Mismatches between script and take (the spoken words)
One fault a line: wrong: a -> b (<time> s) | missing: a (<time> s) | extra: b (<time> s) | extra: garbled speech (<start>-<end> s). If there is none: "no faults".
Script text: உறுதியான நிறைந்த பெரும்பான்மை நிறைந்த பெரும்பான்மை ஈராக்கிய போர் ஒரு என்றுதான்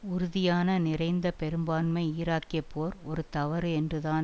missing: நிறைந்த பெரும்பான்மை (2.0 s)
extra: தவறு (3.3 s)